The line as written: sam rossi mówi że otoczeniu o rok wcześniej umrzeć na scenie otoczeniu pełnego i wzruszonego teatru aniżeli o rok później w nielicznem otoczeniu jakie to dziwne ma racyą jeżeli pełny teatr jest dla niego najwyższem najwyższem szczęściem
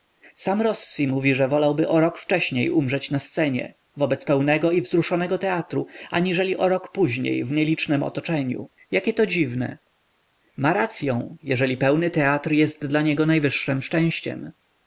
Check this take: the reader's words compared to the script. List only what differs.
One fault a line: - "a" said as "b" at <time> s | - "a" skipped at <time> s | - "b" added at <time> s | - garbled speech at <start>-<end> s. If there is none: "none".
- "otoczeniu" said as "wolałby" at 1.5 s
- "otoczeniu" said as "wobec" at 4.0 s
- "najwyższem" skipped at 13.8 s